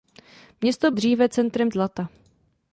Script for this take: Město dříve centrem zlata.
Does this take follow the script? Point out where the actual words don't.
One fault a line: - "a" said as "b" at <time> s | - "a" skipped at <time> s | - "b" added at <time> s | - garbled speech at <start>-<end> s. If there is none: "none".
none